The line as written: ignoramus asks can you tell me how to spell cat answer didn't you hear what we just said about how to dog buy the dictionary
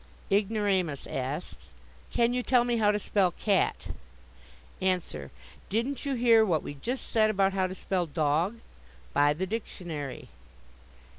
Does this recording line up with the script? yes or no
no